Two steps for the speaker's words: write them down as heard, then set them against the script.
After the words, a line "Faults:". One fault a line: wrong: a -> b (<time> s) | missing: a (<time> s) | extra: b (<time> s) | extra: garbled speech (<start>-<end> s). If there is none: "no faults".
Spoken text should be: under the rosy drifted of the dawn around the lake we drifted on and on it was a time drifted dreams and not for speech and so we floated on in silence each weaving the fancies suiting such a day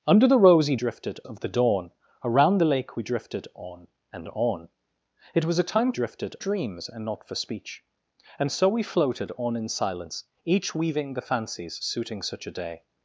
under the rosy drifted of the dawn around the lake we drifted on and on it was a time drifted dreams and not for speech and so we floated on in silence each weaving the fancies suiting such a day
Faults:
no faults